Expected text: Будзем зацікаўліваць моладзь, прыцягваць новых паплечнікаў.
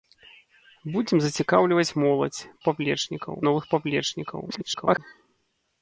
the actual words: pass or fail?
fail